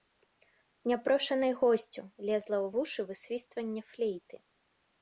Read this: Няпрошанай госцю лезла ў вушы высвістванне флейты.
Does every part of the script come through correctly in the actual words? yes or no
yes